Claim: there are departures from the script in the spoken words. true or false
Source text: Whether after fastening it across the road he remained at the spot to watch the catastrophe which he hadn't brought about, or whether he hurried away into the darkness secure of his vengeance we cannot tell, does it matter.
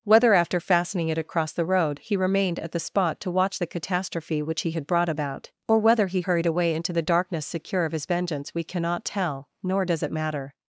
true